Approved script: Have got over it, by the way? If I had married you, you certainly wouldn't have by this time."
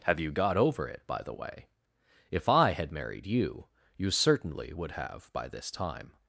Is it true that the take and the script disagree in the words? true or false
true